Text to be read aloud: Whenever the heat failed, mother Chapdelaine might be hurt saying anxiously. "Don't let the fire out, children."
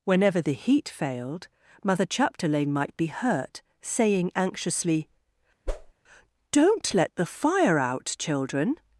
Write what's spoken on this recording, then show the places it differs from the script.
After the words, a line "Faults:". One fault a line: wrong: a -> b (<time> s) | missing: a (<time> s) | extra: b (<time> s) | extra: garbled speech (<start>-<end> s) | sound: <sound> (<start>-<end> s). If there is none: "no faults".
Whenever the heat failed, mother Chapdelaine might be hurt saying anxiously. "Don't let the fire out, children."
Faults:
sound: whoosh (5.7-5.9 s)